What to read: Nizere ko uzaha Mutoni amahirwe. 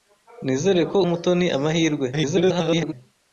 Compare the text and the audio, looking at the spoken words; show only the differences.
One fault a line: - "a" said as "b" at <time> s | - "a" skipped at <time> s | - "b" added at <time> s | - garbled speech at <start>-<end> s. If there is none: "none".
- "uzaha" skipped at 1.0 s
- garbled speech at 2.1-2.9 s